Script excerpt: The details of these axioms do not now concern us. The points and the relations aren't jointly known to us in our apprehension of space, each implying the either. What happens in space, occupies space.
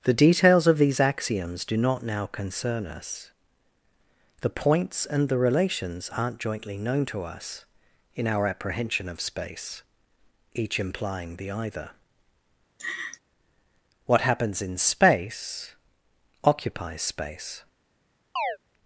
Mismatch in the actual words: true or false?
false